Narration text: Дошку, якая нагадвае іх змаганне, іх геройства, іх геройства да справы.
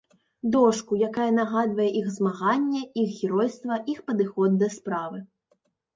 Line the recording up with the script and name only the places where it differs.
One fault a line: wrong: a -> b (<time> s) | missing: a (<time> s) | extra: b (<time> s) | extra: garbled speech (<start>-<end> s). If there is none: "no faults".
wrong: геройства -> падыход (4.1 s)